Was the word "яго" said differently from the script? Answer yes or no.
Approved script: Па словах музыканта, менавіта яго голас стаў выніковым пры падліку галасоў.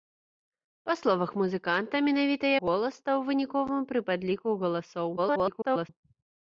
yes